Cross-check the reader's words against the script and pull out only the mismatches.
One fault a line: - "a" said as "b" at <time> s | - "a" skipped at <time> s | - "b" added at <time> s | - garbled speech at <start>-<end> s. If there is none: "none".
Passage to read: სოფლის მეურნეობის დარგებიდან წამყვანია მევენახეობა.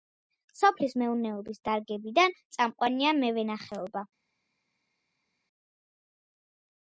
none